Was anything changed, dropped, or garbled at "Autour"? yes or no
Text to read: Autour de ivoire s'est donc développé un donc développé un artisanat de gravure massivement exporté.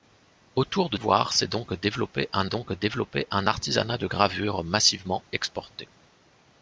no